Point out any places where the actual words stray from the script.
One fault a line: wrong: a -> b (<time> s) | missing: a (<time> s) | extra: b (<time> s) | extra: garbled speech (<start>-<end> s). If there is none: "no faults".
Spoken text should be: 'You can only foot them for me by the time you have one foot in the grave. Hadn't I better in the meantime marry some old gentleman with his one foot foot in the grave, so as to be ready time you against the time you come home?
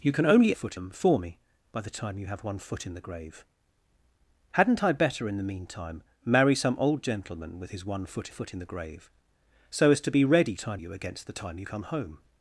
no faults